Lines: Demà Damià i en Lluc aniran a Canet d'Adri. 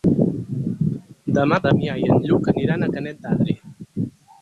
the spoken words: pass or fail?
pass